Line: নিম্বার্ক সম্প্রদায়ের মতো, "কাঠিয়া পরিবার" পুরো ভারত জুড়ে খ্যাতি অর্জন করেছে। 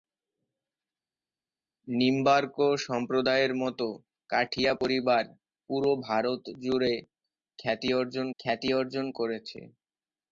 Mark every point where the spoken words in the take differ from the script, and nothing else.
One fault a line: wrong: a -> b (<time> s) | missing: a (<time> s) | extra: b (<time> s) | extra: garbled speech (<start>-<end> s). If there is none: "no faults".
extra: খ্যাতি অর্জন (8.4 s)